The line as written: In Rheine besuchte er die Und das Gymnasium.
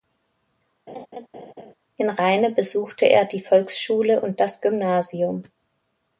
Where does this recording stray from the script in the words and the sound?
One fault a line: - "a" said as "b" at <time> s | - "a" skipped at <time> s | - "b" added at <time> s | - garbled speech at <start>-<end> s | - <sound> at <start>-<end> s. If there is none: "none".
- laugh at 0.9-1.7 s
- "Volksschule" added at 3.4 s